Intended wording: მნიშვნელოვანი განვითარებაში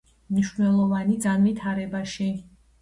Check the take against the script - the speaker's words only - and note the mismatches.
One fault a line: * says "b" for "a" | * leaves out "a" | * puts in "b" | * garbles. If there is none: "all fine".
all fine